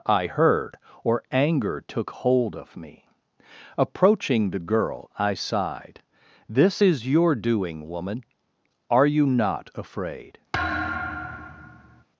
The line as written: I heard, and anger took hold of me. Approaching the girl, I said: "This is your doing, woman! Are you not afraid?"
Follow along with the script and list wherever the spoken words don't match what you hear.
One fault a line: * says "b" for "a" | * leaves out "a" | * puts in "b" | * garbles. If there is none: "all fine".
* says "or" for "and"
* says "sighed" for "said"